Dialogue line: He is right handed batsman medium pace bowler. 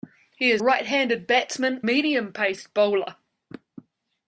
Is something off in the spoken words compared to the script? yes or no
no